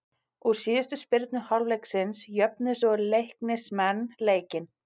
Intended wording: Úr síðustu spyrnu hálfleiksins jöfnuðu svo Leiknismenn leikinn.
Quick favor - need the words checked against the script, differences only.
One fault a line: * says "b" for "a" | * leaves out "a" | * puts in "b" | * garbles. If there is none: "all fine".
all fine